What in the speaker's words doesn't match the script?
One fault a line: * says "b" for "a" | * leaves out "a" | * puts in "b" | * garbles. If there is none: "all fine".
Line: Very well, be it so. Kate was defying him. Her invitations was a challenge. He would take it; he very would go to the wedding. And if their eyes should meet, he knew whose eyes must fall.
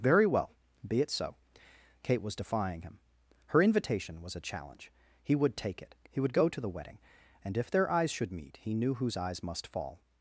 * says "invitation" for "invitations"
* leaves out "very"